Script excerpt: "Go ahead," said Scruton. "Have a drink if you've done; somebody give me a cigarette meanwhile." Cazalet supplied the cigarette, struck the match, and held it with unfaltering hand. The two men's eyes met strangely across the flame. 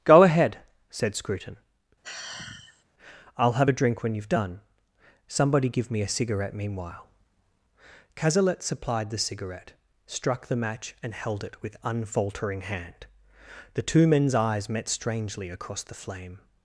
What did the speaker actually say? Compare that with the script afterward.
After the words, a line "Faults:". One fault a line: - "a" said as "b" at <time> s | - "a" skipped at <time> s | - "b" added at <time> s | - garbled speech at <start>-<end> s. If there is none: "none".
"Go ahead," said Scruton. "I'll have a drink when you've done; somebody give me a cigarette meanwhile." Cazalet supplied the cigarette, struck the match, and held it with unfaltering hand. The two men's eyes met strangely across the flame.
Faults:
- "I'll" added at 3.4 s
- "if" said as "when" at 4.0 s